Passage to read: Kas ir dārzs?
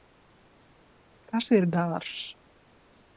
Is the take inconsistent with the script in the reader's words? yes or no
no